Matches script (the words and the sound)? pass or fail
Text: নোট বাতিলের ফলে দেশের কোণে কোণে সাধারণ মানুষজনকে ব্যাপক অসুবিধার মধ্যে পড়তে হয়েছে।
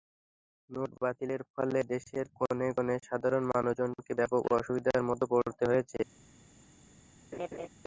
fail